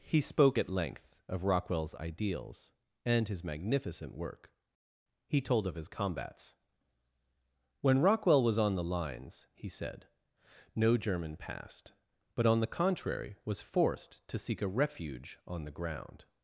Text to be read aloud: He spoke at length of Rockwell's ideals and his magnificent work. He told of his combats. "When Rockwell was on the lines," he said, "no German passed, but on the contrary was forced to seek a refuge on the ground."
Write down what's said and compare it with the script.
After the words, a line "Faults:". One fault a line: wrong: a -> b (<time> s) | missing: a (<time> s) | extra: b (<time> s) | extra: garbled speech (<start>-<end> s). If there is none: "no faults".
He spoke at length of Rockwell's ideals and his magnificent work. He told of his combats. "When Rockwell was on the lines," he said, "no German passed, but on the contrary was forced to seek a refuge on the ground."
Faults:
no faults